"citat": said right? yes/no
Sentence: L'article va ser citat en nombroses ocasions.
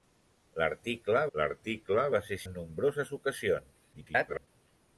no